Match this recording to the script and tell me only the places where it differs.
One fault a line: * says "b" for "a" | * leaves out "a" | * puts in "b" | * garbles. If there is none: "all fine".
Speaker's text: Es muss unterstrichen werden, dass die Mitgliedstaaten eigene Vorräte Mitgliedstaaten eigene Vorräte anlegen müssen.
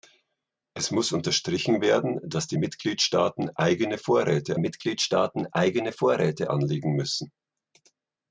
all fine